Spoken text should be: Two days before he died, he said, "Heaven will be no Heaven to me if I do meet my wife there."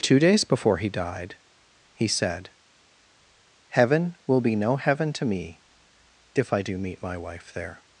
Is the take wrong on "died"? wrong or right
right